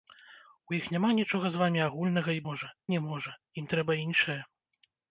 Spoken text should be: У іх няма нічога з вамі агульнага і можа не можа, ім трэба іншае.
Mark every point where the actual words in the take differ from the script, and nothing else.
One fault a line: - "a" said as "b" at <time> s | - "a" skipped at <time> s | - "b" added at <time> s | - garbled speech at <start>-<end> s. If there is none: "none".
none